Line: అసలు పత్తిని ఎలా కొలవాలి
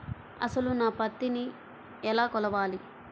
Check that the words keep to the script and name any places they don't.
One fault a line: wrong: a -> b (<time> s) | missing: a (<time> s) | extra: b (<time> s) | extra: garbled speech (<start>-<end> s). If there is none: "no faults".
extra: నా (0.7 s)